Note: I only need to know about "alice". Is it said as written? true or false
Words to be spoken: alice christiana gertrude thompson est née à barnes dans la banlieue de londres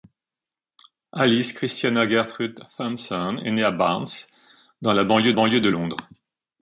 true